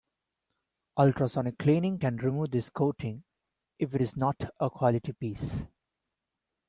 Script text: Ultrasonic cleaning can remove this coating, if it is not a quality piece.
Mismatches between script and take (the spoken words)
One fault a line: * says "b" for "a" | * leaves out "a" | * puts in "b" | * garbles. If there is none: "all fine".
all fine